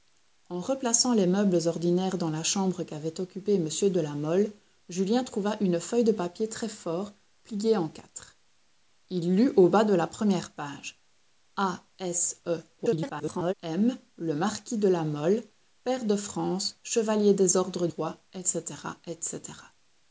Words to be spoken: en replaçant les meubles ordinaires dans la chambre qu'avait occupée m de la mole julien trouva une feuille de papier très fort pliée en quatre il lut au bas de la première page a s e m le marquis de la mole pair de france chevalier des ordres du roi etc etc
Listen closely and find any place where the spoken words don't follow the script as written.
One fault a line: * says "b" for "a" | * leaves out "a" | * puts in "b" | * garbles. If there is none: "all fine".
* garbles
* leaves out "du"